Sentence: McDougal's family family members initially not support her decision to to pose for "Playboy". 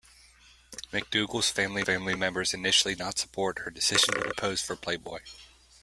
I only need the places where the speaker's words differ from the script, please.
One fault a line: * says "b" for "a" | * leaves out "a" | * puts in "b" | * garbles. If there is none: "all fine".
all fine